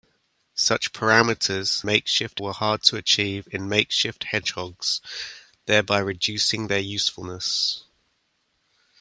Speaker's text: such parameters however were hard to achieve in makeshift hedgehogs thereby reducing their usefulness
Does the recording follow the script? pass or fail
fail